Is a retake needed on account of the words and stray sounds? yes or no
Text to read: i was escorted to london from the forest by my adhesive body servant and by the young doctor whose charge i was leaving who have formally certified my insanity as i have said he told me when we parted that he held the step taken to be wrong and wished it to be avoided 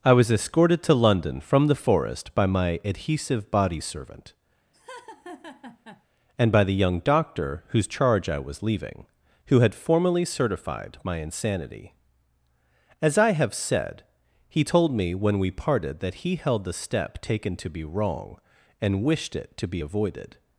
yes